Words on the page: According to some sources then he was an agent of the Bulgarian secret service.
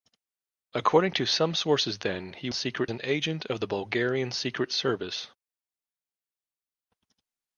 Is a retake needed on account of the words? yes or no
yes